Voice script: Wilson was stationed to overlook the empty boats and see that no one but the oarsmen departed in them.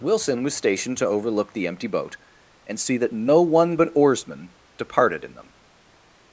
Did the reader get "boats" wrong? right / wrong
wrong